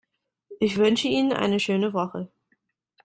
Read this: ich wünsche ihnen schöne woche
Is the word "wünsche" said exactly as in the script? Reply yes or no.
yes